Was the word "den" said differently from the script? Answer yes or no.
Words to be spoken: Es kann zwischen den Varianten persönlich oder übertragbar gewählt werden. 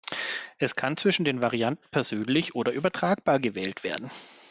no